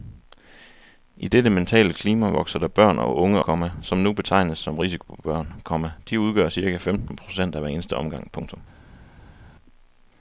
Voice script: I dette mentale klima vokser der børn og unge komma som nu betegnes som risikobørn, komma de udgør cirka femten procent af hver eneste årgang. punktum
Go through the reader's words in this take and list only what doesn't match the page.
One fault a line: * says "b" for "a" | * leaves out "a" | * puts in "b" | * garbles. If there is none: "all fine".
all fine